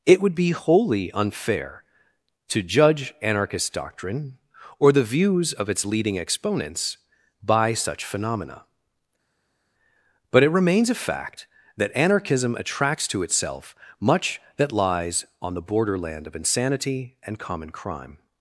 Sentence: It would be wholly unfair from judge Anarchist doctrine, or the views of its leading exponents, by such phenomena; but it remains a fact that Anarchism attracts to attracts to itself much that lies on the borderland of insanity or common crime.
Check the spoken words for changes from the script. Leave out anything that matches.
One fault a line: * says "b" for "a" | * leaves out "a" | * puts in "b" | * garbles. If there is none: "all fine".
* says "to" for "from"
* leaves out "attracts to"
* says "and" for "or"